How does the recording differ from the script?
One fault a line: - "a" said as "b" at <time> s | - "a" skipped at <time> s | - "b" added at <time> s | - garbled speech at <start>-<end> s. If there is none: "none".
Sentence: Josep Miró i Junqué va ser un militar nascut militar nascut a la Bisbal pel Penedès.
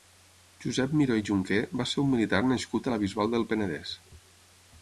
- "militar nascut" skipped at 2.9 s
- "pel" said as "del" at 3.4 s